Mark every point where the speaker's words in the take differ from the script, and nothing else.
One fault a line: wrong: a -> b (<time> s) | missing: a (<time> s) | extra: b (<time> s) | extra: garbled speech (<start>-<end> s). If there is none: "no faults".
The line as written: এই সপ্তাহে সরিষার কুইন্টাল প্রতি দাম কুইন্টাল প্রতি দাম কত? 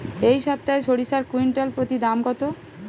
missing: কুইন্টাল প্রতি দাম (2.2 s)